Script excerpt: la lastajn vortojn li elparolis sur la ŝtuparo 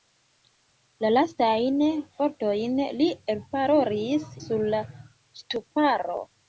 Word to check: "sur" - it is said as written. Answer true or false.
true